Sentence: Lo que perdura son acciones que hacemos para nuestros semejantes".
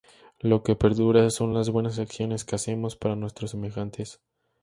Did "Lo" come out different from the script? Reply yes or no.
no